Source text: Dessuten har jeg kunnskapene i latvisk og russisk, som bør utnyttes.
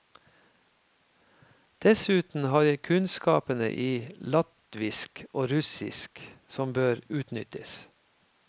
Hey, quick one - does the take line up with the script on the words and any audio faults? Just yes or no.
yes